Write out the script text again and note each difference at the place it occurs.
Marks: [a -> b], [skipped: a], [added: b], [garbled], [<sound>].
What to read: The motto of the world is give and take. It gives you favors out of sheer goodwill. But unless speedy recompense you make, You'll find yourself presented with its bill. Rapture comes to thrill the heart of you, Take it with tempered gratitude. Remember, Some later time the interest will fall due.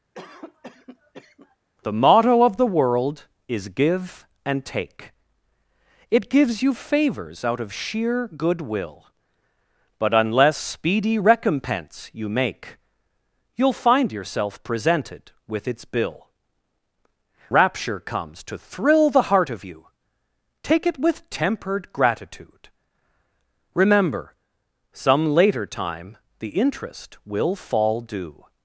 [cough] The motto of the world is give and take. It gives you favors out of sheer goodwill. But unless speedy recompense you make, You'll find yourself presented with its bill. Rapture comes to thrill the heart of you, Take it with tempered gratitude. Remember, Some later time the interest will fall due.